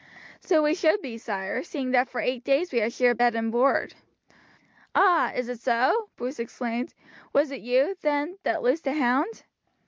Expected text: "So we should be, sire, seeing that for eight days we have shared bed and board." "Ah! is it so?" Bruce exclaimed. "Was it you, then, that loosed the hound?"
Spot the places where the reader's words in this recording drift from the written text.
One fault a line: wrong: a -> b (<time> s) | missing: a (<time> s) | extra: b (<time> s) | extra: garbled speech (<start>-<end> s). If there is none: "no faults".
no faults